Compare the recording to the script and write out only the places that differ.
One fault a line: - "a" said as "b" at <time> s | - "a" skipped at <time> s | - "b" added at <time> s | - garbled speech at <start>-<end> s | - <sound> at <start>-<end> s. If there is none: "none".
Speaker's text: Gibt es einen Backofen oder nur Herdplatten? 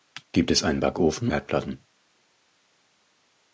- "oder nur" skipped at 1.3 s